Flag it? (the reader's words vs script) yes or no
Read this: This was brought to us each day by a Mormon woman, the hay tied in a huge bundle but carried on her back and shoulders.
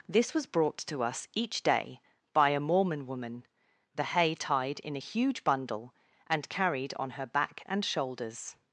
yes